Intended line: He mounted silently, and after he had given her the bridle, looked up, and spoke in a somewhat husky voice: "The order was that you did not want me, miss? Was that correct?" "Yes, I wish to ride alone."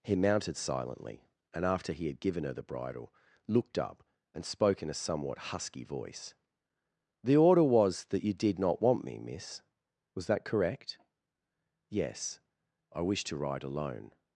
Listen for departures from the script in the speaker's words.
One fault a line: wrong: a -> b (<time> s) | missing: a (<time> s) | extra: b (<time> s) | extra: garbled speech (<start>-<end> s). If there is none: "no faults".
no faults